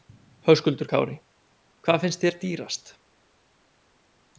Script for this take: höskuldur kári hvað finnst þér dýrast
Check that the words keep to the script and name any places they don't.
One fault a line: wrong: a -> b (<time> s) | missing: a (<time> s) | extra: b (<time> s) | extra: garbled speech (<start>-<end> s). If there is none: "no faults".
no faults